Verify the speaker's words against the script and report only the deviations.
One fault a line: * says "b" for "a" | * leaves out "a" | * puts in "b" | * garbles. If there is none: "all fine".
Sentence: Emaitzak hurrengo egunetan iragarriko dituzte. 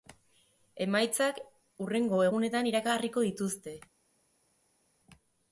all fine